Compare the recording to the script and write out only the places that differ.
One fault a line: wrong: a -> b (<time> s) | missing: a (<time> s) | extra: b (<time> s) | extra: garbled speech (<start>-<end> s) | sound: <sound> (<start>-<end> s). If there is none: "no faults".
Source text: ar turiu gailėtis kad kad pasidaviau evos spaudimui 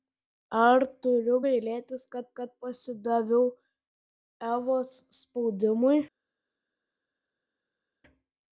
no faults